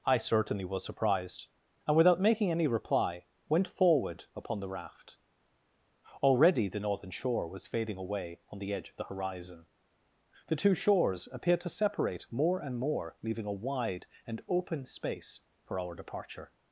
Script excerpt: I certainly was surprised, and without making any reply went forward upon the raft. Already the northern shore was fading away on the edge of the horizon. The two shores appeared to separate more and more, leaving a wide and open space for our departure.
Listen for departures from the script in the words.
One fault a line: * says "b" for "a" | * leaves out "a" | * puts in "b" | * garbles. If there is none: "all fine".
all fine